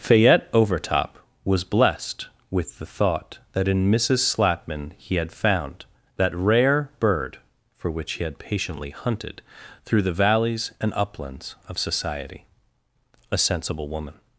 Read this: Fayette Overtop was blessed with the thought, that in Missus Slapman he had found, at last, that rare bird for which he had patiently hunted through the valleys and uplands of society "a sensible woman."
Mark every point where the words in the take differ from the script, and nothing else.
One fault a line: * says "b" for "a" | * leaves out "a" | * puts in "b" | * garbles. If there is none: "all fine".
* leaves out "at last"